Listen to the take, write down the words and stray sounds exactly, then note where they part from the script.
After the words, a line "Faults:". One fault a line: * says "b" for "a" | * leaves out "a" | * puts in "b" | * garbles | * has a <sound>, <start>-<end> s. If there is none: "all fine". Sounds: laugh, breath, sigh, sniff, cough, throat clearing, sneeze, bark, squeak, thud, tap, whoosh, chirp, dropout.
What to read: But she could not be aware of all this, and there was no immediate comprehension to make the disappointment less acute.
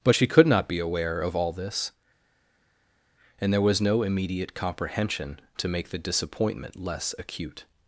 But she could not be aware of all this, and there was no immediate comprehension to make the disappointment less acute.
Faults:
all fine